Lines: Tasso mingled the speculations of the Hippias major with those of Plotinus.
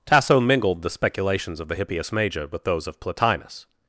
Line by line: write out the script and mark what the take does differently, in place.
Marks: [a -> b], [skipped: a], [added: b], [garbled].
Tasso mingled the speculations of the Hippias major with those of Plotinus.